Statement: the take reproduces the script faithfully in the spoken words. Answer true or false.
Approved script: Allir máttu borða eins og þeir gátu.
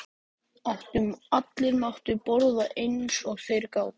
true